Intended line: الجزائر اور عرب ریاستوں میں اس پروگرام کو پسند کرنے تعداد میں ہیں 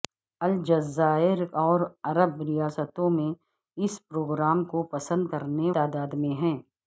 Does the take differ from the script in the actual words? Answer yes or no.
no